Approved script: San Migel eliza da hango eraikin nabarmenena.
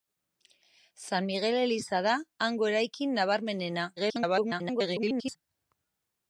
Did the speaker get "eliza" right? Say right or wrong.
right